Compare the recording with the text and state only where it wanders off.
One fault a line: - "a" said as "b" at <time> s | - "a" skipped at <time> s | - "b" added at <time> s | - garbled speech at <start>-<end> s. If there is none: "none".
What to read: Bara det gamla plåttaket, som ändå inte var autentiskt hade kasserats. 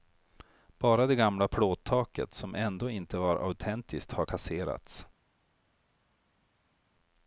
- "hade" said as "har" at 4.1 s